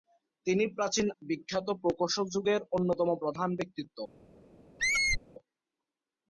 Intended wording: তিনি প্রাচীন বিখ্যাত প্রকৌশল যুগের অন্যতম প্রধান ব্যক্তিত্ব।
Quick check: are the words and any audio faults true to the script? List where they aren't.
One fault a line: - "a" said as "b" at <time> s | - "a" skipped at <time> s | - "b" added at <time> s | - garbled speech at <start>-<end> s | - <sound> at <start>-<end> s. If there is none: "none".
- squeak at 4.8-5.2 s